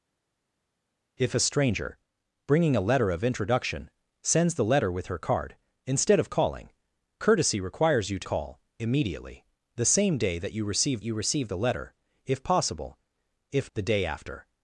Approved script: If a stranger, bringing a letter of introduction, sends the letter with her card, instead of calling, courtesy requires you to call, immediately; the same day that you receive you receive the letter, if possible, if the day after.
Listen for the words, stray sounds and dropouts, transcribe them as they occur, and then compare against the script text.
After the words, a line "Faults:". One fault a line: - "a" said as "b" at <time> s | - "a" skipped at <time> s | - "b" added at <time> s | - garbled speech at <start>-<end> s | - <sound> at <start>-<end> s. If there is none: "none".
If a stranger, bringing a letter of introduction, sends the letter with her card, instead of calling, courtesy requires you to call, immediately; the same day that you receive you receive the letter, if possible, if the day after.
Faults:
none